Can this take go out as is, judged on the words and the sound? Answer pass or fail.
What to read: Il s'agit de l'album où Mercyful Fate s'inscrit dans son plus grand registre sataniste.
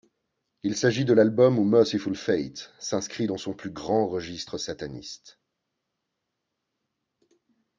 pass